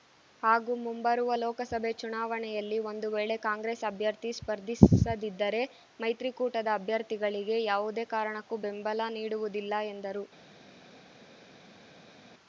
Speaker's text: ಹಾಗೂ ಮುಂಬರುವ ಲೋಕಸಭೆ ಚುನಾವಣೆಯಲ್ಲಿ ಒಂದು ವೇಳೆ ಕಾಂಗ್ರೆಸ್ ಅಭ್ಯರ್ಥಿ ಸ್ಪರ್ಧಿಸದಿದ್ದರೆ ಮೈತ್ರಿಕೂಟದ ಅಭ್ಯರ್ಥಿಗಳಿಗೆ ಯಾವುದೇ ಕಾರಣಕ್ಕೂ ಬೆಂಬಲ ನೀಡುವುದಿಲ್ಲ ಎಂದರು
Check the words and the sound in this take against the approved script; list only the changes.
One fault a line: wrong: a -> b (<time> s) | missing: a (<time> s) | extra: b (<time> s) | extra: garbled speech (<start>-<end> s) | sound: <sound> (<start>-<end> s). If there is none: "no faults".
no faults